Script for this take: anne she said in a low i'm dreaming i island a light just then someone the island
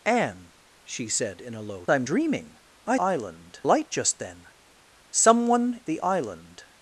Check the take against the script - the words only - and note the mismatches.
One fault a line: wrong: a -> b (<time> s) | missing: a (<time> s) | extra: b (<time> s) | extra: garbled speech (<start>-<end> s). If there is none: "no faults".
no faults